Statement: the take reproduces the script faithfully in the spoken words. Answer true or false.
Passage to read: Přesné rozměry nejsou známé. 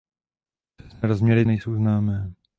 true